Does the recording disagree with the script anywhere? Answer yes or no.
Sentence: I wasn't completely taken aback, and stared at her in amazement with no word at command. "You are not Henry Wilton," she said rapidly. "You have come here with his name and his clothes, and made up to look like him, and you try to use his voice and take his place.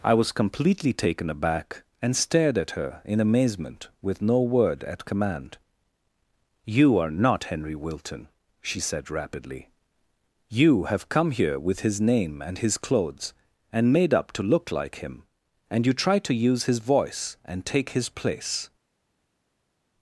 yes